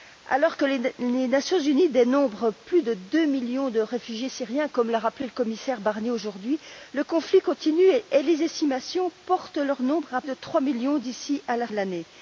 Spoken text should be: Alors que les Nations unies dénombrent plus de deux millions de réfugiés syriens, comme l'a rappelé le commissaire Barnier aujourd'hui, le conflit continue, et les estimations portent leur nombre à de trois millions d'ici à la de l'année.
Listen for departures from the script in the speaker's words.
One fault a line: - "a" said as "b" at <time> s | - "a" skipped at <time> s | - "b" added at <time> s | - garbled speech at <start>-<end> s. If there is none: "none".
none